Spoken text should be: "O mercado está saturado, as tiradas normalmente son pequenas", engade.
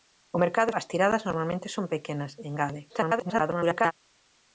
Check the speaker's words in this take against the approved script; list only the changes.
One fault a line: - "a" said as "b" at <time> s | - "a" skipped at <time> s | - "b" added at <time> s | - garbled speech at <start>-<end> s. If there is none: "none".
- "está saturado" skipped at 0.7 s
- garbled speech at 2.9-3.9 s